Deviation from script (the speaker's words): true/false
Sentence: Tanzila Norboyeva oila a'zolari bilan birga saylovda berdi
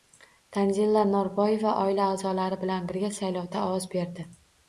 true